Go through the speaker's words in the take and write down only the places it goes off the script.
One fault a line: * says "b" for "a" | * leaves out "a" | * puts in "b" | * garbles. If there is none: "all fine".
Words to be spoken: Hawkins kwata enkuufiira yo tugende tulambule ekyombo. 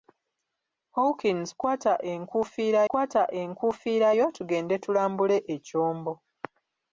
* puts in "kwata enkuufiira"